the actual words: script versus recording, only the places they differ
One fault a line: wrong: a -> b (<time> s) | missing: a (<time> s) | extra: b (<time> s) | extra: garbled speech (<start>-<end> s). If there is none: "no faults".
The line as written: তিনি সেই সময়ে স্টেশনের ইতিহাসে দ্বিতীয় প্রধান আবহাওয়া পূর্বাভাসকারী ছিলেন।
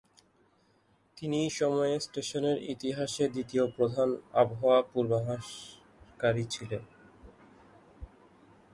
missing: সেই (1.5 s)